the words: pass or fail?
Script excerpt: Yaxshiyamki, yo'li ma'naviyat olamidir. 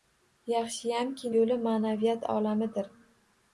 pass